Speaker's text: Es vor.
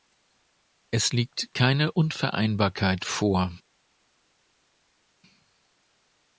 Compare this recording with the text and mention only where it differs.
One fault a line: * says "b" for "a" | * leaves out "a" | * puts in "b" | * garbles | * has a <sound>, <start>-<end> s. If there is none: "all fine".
* puts in "liegt keine Unvereinbarkeit"